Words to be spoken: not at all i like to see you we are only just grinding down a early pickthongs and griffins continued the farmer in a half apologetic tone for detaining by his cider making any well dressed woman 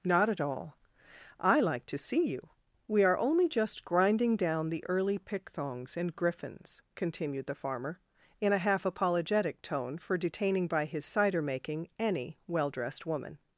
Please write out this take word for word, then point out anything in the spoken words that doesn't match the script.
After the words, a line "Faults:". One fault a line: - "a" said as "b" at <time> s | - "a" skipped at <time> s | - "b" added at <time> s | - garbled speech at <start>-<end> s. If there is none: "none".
not at all i like to see you we are only just grinding down the early pickthongs and griffins continued the farmer in a half apologetic tone for detaining by his cider making any well dressed woman
Faults:
- "a" said as "the" at 4.7 s